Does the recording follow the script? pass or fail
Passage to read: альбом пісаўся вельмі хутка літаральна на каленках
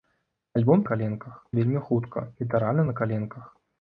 fail